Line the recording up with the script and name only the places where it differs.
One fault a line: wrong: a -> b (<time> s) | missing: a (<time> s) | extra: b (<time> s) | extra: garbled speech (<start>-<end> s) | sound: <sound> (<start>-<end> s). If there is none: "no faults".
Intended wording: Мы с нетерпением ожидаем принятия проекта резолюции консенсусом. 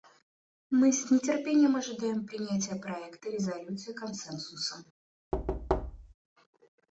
sound: thud (5.3-6.1 s)